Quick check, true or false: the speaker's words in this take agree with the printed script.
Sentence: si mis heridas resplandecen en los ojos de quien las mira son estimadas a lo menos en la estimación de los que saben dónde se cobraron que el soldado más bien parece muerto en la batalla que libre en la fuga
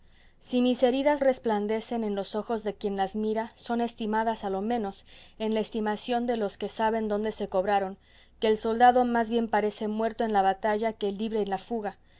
true